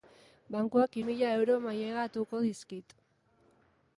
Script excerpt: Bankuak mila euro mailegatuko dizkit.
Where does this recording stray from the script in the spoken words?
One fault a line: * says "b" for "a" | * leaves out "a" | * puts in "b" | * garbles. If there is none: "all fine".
all fine